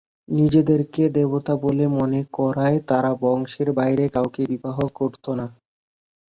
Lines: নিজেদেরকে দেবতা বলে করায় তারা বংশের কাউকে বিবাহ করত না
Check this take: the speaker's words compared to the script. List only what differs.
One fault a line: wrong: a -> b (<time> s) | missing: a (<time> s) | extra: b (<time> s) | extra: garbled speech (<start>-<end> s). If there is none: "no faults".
extra: মনে (2.0 s)
extra: বাইরে (3.8 s)